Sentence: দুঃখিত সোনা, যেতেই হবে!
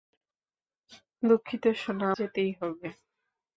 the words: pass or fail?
pass